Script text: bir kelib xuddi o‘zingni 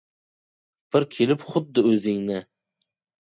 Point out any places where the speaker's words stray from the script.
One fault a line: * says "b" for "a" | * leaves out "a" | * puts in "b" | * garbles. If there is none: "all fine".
all fine